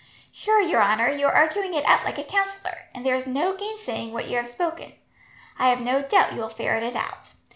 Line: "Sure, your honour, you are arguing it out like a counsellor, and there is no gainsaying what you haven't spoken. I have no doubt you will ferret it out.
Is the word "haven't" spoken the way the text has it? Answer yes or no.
no